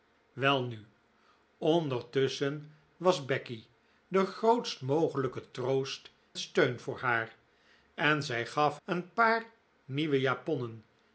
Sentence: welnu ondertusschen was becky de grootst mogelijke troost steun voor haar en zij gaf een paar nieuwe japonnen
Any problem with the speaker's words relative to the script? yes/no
no